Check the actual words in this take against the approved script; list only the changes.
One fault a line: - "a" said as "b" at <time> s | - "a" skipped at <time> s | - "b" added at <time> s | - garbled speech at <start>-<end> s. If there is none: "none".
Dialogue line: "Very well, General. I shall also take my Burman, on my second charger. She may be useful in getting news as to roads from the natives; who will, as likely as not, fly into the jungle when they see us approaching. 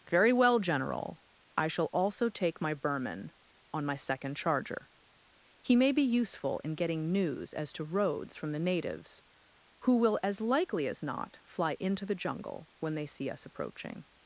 - "She" said as "He" at 5.6 s